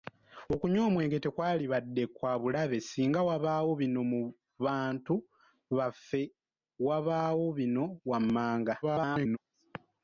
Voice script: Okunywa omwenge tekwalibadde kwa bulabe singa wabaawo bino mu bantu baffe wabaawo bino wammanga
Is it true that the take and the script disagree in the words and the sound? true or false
true